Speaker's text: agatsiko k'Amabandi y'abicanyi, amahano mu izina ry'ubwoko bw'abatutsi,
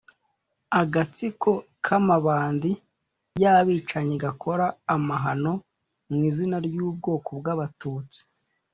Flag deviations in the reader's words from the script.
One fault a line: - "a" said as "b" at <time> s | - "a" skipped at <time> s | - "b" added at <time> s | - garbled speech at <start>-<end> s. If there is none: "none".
- "gakora" added at 4.2 s